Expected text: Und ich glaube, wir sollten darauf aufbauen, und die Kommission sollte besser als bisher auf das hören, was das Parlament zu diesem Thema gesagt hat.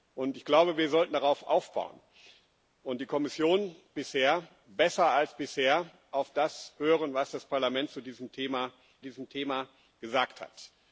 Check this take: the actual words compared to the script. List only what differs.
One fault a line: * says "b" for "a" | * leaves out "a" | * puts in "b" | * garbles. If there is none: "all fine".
* says "bisher" for "sollte"
* puts in "diesem Thema"